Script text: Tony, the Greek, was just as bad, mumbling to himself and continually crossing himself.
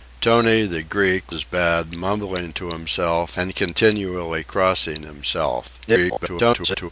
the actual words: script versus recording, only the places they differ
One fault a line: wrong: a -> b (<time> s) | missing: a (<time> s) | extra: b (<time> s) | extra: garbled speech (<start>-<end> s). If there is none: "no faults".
missing: was just (1.3 s)
extra: garbled speech (5.9-6.9 s)